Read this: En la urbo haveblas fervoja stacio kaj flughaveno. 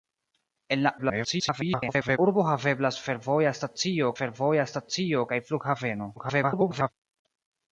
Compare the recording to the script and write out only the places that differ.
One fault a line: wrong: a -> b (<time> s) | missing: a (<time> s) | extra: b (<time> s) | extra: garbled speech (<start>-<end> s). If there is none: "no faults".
extra: garbled speech (1.0-2.2 s)
extra: fervoja stacio (4.2 s)
extra: garbled speech (6.2-6.9 s)